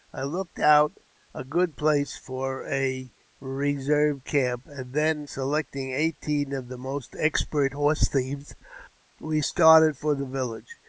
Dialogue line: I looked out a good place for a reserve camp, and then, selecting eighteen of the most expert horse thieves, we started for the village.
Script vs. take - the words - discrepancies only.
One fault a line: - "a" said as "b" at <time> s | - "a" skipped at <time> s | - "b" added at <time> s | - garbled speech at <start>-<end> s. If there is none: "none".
none